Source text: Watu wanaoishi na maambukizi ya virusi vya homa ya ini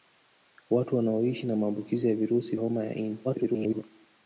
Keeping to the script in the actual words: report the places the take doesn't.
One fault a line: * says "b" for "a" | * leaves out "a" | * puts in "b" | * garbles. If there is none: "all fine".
* leaves out "vya"
* garbles